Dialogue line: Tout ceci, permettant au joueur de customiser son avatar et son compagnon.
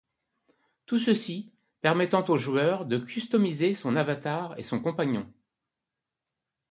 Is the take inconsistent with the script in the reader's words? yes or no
no